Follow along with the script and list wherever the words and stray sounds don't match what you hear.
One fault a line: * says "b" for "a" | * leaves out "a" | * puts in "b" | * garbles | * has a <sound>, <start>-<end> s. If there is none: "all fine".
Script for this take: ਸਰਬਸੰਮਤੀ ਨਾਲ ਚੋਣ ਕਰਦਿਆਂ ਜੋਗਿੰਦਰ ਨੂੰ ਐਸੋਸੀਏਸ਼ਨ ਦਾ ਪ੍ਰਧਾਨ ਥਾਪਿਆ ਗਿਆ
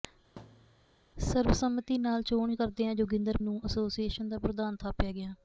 * has a thud, 0.4-0.9 s